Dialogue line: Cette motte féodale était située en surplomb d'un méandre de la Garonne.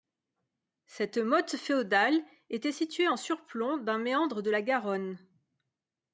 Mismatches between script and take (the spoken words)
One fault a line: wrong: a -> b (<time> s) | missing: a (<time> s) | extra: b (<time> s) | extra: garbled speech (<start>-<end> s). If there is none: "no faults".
no faults